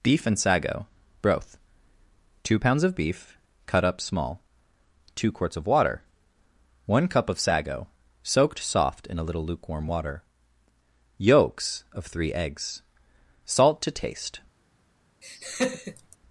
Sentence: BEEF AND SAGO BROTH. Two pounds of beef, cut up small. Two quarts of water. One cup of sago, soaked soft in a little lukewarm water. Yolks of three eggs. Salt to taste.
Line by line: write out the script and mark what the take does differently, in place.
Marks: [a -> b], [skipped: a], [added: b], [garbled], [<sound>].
BEEF AND SAGO BROTH. Two pounds of beef, cut up small. Two quarts of water. One cup of sago, soaked soft in a little lukewarm water. Yolks of three eggs. Salt to taste. [laugh]